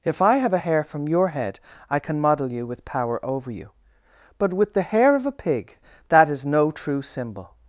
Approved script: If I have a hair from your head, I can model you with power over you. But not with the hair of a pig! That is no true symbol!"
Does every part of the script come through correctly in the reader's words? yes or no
no